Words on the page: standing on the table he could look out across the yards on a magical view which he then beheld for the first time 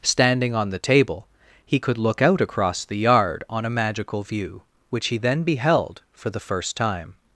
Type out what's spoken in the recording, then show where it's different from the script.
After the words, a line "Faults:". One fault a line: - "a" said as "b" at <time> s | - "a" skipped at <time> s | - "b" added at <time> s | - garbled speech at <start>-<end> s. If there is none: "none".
standing on the table he could look out across the yard on a magical view which he then beheld for the first time
Faults:
- "yards" said as "yard" at 3.0 s